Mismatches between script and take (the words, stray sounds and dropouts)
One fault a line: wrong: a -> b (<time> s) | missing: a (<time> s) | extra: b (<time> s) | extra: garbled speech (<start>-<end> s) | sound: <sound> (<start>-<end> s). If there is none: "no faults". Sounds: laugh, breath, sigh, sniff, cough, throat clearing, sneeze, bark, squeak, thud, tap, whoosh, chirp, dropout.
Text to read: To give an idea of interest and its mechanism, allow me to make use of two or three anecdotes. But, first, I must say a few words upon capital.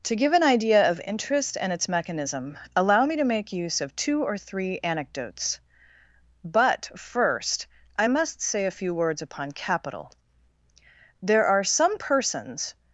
extra: There are some persons (11.2 s)